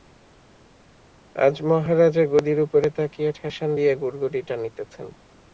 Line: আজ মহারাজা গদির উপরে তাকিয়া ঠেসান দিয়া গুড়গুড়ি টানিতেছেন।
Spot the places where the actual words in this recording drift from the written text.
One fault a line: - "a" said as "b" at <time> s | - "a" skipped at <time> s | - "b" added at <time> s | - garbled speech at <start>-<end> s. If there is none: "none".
none